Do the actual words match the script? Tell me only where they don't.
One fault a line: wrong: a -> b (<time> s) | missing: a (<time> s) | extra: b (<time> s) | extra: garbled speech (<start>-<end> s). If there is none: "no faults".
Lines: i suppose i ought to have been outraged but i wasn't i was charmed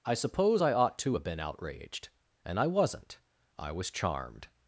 wrong: but -> and (2.4 s)